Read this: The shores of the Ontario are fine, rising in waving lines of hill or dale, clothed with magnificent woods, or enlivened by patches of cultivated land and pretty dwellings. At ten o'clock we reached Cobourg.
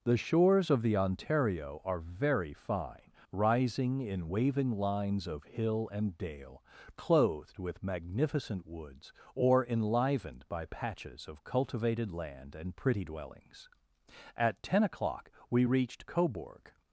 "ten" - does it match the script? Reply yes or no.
yes